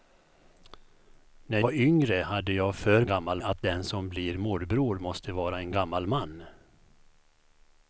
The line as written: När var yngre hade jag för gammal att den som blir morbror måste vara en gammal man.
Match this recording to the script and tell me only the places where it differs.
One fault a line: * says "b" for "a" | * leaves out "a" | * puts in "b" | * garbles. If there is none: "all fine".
all fine